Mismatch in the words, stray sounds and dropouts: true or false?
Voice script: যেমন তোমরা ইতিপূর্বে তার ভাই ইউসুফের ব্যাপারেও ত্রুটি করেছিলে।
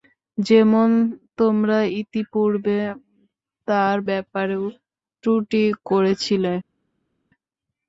true